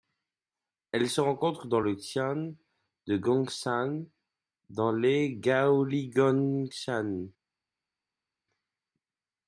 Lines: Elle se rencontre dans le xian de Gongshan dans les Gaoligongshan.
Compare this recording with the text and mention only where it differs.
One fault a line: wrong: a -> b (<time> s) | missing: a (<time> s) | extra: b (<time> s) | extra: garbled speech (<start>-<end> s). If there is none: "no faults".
no faults